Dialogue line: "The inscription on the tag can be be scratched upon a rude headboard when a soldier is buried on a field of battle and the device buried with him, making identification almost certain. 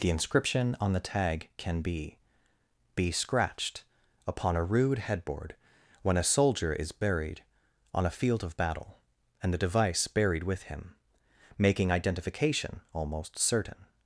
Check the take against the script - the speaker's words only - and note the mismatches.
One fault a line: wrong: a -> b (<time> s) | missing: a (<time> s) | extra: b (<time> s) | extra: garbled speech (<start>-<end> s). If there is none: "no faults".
no faults